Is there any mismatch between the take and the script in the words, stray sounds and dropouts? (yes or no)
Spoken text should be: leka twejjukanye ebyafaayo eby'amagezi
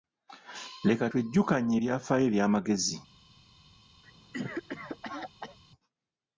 yes